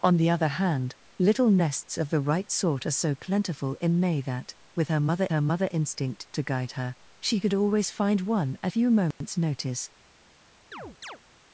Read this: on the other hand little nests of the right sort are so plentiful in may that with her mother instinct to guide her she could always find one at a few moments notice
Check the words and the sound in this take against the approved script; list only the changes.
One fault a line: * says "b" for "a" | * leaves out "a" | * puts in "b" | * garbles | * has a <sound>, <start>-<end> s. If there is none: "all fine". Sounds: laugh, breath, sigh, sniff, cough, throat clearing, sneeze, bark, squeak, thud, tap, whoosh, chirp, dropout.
* puts in "her mother"
* leaves out "a"
* has a dropout, 9.1-9.2 s
* has a chirp, 10.7-11.2 s